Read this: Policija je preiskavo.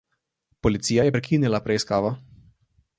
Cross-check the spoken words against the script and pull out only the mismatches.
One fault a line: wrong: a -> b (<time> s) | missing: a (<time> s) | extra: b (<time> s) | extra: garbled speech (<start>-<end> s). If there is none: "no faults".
extra: prekinila (1.1 s)